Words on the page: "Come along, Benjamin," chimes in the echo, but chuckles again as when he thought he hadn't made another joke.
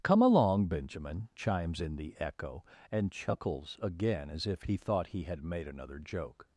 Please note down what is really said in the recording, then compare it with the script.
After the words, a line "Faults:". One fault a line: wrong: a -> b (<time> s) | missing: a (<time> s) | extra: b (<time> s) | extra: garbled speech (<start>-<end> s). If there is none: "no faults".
"Come along, Benjamin," chimes in the echo, and chuckles again as if he thought he had made another joke.
Faults:
wrong: but -> and (2.9 s)
wrong: when -> if (4.5 s)
wrong: hadn't -> had (5.2 s)